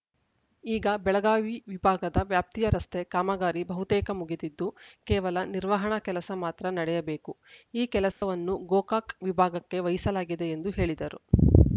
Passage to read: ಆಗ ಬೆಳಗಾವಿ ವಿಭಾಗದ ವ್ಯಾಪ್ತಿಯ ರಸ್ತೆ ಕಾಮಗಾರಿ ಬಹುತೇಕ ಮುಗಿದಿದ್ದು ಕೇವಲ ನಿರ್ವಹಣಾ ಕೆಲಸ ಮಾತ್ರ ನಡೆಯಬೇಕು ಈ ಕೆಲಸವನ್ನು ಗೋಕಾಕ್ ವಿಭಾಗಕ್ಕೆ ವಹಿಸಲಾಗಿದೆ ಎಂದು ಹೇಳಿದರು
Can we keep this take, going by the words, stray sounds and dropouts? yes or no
no